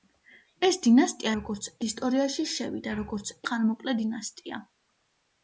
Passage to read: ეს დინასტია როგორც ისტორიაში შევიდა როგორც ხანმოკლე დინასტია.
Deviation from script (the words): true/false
false